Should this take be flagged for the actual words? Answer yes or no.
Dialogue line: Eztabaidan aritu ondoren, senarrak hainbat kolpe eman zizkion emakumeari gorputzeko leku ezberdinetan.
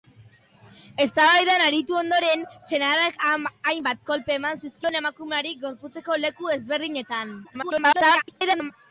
yes